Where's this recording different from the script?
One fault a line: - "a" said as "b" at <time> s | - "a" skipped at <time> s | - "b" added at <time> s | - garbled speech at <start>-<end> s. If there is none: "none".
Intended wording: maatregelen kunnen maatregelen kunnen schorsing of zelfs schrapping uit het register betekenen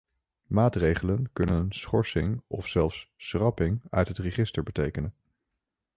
- "maatregelen kunnen" skipped at 1.7 s